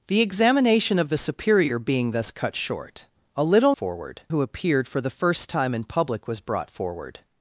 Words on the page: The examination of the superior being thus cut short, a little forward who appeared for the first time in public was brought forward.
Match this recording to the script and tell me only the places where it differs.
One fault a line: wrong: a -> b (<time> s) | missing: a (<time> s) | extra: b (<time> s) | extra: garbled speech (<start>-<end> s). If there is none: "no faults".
no faults